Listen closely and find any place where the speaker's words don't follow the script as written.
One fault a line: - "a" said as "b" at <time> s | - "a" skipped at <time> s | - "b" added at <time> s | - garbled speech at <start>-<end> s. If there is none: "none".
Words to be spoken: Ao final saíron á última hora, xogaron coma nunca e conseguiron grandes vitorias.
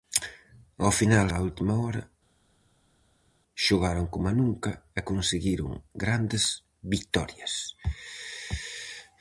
- "saíron" skipped at 1.3 s